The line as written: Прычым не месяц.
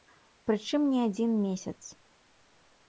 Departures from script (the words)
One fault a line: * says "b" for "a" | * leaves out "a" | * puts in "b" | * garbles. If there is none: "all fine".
* puts in "адзін"